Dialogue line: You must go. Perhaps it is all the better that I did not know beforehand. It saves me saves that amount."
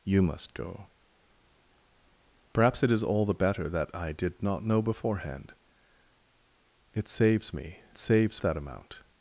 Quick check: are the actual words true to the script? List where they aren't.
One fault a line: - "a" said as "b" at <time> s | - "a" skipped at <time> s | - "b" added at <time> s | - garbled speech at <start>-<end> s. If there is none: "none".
none